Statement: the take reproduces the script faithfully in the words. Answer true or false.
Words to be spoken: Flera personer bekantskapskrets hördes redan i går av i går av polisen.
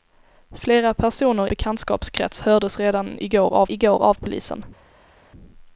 true